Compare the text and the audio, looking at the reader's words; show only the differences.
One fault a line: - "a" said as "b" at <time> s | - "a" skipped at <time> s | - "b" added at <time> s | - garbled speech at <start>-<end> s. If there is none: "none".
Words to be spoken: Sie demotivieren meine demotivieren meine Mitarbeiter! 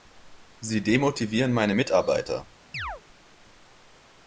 - "demotivieren meine" skipped at 1.8 s